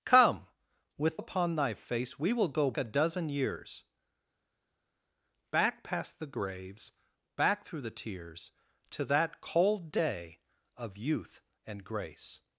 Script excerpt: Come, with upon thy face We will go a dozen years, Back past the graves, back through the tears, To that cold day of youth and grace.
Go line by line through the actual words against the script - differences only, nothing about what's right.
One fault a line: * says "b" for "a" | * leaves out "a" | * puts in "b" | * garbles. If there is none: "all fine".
all fine